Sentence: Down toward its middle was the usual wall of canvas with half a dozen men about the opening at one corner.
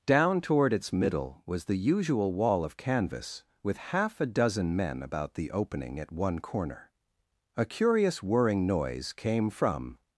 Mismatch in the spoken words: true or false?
true